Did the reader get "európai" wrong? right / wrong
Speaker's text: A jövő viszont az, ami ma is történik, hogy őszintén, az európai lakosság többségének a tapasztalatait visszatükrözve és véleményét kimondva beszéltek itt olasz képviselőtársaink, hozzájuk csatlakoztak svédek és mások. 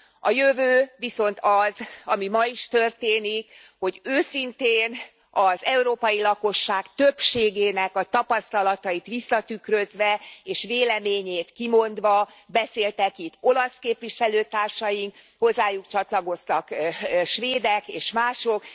right